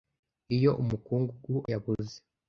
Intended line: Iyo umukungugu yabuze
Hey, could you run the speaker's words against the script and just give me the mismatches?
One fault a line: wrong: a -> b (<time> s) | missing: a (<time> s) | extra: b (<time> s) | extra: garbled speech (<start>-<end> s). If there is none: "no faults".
no faults